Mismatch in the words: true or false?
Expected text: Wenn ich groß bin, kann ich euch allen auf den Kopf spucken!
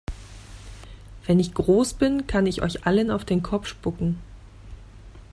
false